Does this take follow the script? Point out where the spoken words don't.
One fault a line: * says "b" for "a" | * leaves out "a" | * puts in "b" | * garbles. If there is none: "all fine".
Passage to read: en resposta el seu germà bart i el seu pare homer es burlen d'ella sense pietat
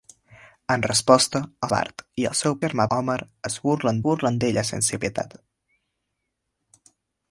* leaves out "seu germà"
* says "germà" for "pare"
* puts in "burlen"